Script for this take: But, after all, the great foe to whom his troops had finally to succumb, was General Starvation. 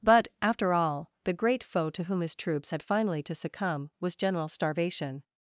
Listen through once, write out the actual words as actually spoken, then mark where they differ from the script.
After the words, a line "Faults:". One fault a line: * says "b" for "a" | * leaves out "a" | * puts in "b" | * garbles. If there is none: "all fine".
But, after all, the great foe to whom his troops had finally to succumb, was General Starvation.
Faults:
all fine